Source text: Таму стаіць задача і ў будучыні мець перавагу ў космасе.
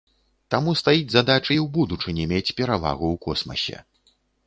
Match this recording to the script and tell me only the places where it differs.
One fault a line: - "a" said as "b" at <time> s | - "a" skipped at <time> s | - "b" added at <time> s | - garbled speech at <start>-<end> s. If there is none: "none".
none